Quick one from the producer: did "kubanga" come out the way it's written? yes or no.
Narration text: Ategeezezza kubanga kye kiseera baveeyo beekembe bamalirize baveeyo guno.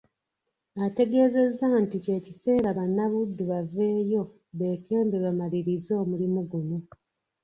no